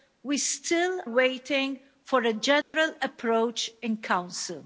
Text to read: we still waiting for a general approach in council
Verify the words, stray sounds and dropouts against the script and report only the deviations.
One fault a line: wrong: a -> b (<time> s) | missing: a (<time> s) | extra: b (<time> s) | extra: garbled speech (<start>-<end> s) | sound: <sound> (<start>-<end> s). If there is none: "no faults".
sound: dropout (2.6-2.7 s)